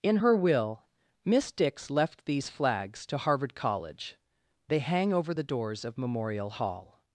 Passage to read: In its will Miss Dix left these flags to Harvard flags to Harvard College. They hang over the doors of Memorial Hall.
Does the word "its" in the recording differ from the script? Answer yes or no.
yes